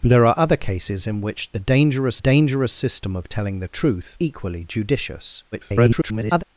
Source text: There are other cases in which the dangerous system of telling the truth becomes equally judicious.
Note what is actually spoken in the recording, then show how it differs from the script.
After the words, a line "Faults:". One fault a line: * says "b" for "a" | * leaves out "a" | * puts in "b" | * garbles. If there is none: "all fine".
There are other cases in which the dangerous dangerous system of telling the truth equally judicious. [garbled]
Faults:
* puts in "dangerous"
* leaves out "becomes"
* garbles